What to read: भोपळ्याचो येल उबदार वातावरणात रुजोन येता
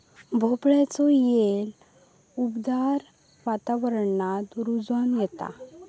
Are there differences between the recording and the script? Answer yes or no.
no